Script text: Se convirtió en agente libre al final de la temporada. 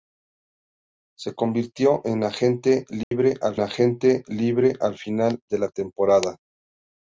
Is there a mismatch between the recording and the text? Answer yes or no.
yes